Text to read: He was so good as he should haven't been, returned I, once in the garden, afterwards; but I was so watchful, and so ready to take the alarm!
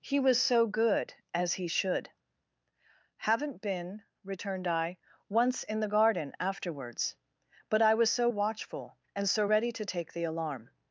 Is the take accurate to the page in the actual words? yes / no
yes